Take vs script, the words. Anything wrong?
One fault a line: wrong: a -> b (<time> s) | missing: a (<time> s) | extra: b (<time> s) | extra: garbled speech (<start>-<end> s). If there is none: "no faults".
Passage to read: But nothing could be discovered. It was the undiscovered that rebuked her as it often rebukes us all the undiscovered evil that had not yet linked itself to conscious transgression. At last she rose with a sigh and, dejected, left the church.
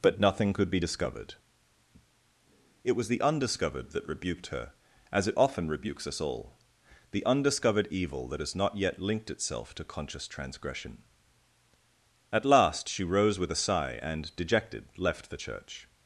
wrong: had -> has (8.4 s)